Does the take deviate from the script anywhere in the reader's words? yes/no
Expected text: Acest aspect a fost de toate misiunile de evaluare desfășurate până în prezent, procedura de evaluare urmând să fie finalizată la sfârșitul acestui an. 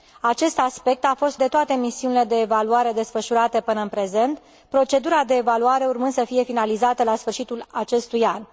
no